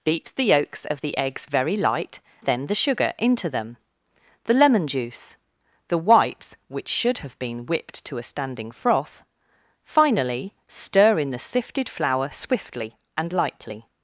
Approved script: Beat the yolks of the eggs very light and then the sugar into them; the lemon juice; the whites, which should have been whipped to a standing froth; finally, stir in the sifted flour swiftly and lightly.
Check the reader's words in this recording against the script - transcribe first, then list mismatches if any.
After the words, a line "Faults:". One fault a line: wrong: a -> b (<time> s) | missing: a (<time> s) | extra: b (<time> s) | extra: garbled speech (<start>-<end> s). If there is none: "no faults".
Beat the yolks of the eggs very light then the sugar into them; the lemon juice; the whites, which should have been whipped to a standing froth; finally, stir in the sifted flour swiftly and lightly.
Faults:
missing: and (2.2 s)